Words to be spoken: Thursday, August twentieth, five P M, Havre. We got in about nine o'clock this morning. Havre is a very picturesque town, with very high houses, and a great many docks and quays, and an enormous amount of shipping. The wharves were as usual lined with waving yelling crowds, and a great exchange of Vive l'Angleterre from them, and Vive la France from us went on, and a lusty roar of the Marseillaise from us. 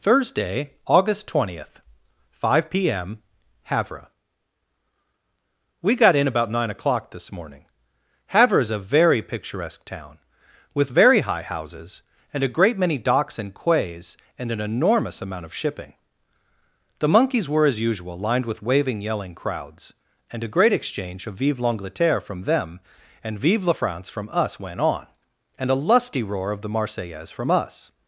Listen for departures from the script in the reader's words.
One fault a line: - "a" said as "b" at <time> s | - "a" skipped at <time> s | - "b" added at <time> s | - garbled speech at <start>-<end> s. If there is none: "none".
- "wharves" said as "monkeys" at 17.1 s